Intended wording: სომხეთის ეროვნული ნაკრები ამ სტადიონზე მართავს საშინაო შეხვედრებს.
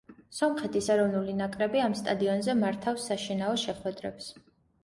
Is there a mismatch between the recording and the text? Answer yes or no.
no